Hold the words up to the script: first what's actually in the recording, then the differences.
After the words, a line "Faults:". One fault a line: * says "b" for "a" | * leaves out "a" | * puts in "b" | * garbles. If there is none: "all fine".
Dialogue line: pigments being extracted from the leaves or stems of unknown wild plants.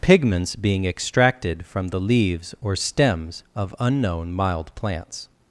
pigments being extracted from the leaves or stems of unknown mild plants.
Faults:
* says "mild" for "wild"